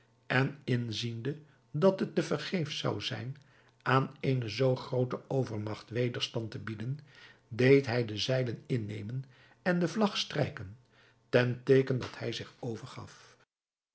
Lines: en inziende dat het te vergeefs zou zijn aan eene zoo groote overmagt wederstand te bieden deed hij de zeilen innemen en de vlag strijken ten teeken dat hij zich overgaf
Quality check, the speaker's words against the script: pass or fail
pass